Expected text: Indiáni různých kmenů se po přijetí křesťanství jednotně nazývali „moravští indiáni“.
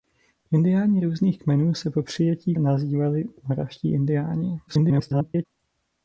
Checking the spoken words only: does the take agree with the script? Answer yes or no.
no